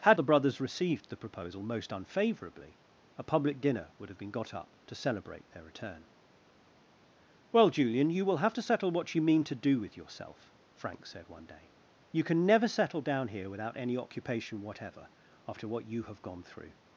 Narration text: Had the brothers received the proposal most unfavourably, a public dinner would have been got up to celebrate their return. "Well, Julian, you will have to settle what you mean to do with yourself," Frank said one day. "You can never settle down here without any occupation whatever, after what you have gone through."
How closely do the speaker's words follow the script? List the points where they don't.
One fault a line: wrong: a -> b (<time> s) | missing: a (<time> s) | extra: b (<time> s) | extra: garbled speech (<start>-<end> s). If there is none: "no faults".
no faults